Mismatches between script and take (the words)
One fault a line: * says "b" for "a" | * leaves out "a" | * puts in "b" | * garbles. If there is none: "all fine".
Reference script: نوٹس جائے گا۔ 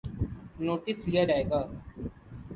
* puts in "لیا"